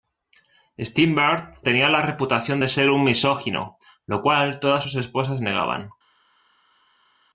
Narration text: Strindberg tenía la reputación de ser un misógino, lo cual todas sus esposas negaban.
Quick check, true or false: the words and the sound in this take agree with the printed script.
true